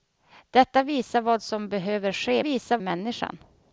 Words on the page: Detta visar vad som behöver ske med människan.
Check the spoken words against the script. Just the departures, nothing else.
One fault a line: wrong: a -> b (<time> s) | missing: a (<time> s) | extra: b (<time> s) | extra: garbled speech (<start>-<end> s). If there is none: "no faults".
wrong: med -> visar (2.4 s)